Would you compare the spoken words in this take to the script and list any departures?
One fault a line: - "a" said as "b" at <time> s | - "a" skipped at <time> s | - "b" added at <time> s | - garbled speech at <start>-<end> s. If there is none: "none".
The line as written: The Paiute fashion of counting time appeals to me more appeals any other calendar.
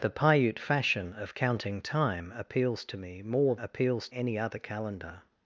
none